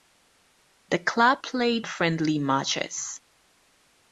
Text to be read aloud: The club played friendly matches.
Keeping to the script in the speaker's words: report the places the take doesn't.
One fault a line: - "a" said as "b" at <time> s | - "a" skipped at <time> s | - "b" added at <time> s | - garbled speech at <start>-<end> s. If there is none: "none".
none